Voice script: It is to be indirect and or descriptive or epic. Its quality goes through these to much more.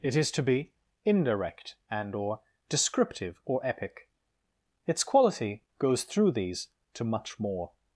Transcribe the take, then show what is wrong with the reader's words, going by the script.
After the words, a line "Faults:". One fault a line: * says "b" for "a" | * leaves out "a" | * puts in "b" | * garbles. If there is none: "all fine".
It is to be indirect and or descriptive or epic. Its quality goes through these to much more.
Faults:
all fine